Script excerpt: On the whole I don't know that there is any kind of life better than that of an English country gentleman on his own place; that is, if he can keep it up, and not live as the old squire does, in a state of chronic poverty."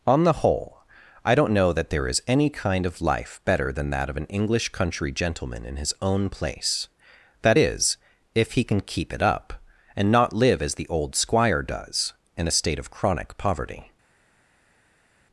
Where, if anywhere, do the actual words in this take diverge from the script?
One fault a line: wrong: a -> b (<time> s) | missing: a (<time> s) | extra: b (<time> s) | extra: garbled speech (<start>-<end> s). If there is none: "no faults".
wrong: on -> in (5.6 s)